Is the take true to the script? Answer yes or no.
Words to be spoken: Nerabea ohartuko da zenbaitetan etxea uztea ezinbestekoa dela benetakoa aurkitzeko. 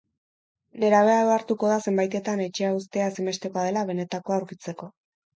yes